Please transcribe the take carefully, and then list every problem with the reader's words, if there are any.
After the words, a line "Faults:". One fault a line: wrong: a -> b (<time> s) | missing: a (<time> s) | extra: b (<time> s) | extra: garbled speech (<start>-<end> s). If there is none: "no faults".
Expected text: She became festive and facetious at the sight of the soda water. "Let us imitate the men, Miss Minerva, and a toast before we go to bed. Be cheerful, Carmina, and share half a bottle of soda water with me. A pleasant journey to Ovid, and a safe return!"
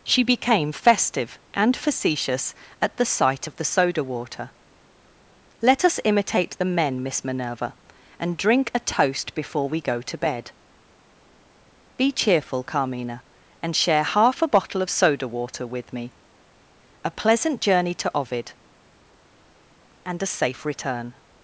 She became festive and facetious at the sight of the soda water. "Let us imitate the men, Miss Minerva, and drink a toast before we go to bed. Be cheerful, Carmina, and share half a bottle of soda water with me. A pleasant journey to Ovid, and a safe return!"
Faults:
extra: drink (8.4 s)